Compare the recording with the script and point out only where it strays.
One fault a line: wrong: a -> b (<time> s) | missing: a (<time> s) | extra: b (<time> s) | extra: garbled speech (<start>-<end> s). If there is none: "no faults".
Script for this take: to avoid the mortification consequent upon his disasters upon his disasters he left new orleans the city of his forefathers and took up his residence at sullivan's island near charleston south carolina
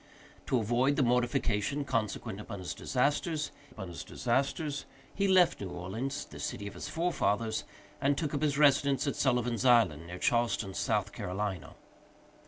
no faults